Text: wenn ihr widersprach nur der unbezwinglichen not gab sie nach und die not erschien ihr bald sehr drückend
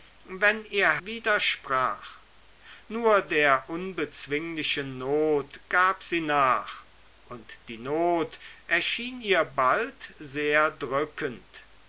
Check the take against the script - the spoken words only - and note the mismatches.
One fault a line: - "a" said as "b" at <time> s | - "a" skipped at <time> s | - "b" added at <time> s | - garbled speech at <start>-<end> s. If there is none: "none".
none